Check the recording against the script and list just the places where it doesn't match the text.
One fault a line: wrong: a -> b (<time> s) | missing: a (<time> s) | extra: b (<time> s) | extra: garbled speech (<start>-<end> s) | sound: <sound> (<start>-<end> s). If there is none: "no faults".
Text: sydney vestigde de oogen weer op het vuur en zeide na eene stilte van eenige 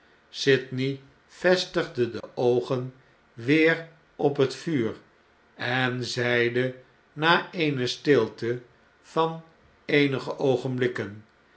sound: dropout (2.2-2.2 s)